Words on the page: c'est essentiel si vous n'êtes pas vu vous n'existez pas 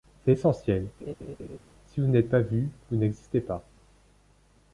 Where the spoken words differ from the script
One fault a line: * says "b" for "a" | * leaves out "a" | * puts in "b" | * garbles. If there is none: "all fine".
all fine